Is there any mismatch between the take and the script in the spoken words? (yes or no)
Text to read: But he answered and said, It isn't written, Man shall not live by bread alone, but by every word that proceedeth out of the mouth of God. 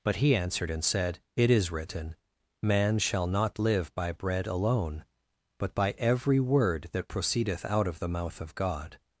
yes